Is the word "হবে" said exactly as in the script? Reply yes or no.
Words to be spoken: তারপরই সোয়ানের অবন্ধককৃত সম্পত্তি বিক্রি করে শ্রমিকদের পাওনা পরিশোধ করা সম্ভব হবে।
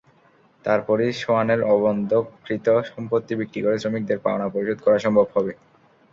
yes